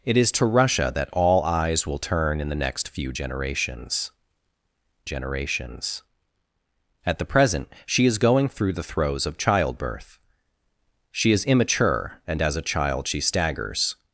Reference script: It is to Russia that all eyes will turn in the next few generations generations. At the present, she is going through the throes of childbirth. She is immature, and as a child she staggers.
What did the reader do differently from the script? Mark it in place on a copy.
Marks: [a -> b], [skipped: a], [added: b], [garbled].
It is to Russia that all eyes will turn in the next few generations generations. At the present, she is going through the throes of childbirth. She is immature, and as a child she staggers.